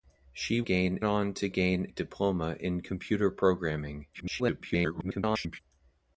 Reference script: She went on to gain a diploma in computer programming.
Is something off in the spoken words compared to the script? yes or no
yes